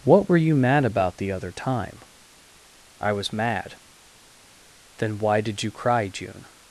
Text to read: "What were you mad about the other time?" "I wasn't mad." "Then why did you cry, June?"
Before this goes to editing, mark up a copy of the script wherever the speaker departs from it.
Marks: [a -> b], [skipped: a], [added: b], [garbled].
"What were you mad about the other time?" "I [wasn't -> was] mad." "Then why did you cry, June?"